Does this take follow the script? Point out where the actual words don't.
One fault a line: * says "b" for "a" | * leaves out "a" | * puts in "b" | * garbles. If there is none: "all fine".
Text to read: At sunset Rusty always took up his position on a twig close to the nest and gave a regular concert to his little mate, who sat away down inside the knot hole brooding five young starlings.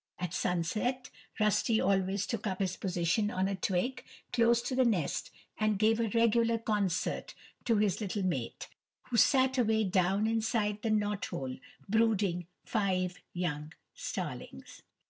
all fine